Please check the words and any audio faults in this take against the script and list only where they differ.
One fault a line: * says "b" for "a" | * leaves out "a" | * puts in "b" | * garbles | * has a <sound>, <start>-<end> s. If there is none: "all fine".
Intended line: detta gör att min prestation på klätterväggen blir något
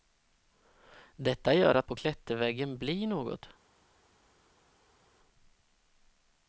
* leaves out "min prestation"